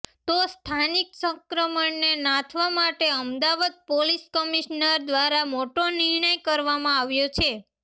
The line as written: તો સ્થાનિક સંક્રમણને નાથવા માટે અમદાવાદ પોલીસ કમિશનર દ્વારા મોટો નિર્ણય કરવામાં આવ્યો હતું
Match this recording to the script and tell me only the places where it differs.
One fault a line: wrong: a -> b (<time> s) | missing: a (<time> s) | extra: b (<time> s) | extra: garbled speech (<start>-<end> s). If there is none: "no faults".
wrong: હતું -> છે (7.4 s)